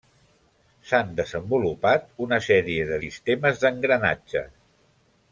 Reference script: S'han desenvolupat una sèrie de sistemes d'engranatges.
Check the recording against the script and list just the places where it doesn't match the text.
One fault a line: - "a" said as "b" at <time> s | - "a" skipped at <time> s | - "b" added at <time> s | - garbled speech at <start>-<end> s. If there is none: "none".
none